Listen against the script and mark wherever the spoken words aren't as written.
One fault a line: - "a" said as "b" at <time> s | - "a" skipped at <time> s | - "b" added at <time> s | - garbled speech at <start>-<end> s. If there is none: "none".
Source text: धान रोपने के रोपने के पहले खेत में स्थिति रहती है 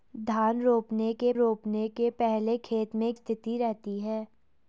none